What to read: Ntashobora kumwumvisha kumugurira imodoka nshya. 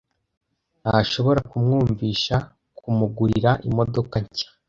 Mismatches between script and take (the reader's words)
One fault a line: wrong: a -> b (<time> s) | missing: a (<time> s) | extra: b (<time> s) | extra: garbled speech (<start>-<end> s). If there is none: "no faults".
no faults